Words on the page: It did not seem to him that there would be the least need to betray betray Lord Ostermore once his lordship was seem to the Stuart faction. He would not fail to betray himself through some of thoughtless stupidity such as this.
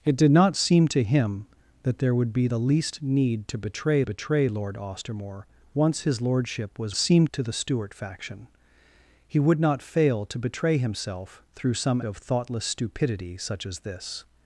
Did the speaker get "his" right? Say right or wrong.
right